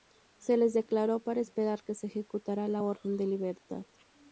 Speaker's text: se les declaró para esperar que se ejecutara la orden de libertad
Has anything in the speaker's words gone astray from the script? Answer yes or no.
no